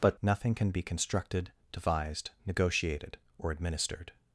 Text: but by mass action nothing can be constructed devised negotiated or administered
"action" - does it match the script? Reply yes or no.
no